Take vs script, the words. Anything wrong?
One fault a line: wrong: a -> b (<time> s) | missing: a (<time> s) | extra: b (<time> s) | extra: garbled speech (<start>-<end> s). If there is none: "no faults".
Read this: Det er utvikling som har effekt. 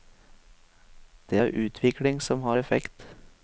no faults